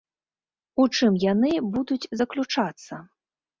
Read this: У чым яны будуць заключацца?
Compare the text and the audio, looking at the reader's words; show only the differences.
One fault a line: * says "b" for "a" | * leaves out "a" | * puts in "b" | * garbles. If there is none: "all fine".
all fine